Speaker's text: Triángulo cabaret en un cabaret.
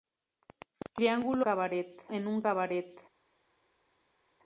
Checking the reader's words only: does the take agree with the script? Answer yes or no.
yes